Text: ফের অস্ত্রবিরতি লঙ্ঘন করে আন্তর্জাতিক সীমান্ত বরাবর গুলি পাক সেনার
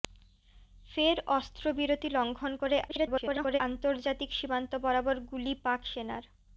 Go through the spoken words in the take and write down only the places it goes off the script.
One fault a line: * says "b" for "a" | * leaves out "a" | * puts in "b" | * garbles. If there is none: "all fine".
* garbles